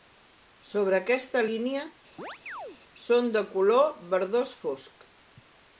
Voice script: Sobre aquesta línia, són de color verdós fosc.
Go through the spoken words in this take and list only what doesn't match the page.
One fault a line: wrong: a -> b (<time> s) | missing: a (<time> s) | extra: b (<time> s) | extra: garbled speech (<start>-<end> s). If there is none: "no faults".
no faults